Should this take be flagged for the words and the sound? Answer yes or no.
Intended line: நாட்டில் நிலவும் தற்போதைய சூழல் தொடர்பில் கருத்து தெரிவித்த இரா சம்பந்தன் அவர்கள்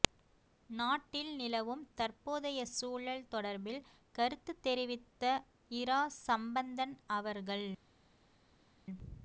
no